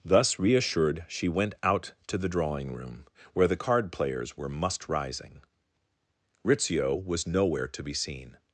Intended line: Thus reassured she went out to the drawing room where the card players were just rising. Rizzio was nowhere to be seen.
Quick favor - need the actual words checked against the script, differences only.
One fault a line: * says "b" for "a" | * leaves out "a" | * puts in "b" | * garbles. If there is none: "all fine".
* says "must" for "just"